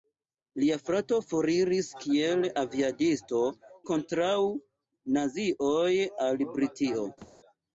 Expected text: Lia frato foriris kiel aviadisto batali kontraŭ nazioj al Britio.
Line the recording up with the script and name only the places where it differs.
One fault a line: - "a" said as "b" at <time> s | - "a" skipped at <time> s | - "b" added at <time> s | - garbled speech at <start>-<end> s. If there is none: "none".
- "batali" skipped at 3.4 s